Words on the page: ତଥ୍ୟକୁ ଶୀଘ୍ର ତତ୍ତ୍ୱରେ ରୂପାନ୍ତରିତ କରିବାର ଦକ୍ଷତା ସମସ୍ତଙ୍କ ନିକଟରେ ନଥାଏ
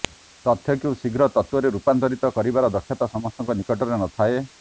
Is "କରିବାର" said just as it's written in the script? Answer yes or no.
yes